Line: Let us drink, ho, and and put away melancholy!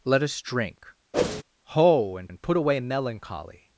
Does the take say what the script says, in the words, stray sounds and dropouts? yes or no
no